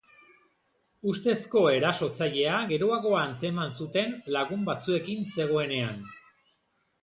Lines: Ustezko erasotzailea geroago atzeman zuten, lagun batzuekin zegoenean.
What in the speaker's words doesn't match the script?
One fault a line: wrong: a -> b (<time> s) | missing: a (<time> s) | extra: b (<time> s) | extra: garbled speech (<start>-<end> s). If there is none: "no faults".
no faults